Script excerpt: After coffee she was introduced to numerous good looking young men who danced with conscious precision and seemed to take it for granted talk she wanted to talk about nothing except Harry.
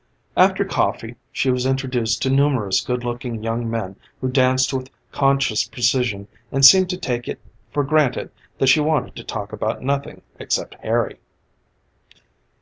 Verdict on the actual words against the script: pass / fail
fail